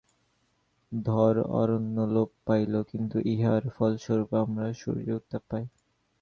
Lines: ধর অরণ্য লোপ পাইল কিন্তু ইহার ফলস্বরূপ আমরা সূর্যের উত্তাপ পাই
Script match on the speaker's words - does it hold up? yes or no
yes